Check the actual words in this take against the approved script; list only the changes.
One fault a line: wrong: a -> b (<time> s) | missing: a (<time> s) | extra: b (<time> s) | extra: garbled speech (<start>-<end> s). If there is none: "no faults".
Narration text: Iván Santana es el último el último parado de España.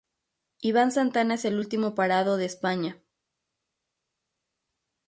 missing: el último (1.9 s)